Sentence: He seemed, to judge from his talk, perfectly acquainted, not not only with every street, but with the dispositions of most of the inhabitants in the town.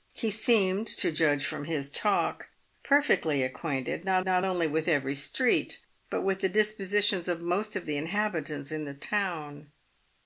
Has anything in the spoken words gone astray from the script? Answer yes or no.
no